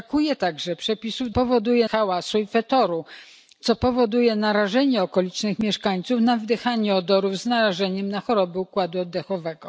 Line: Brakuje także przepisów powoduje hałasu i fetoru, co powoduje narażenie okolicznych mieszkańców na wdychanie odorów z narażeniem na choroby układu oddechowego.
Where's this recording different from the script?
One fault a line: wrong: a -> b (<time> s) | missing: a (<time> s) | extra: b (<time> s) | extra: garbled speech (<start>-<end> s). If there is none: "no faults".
no faults